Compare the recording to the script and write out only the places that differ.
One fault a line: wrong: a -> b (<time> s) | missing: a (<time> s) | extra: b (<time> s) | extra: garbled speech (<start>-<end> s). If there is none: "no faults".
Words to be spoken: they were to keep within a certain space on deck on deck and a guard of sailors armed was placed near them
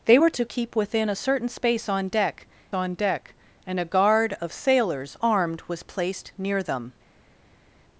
no faults